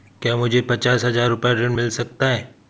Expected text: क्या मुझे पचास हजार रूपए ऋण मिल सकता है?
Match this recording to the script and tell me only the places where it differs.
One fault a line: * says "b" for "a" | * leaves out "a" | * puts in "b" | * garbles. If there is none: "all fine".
all fine